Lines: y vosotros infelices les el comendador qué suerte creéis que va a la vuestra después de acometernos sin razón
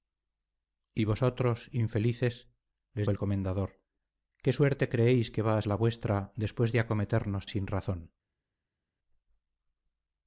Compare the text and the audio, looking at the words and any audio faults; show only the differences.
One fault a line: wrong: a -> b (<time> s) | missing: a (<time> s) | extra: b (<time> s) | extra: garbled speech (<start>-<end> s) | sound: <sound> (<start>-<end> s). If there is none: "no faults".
no faults